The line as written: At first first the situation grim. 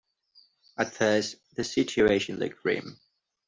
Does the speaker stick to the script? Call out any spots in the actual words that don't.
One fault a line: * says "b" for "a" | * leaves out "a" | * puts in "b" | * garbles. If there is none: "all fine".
* leaves out "first"
* puts in "looked"